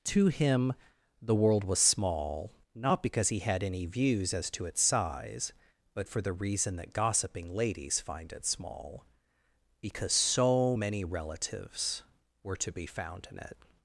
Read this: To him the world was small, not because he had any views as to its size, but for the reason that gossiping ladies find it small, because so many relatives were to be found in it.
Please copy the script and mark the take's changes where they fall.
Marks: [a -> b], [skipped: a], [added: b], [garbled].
To him the world was small, not because he had any views as to its size, but for the reason that gossiping ladies find it small, because so many relatives were to be found in it.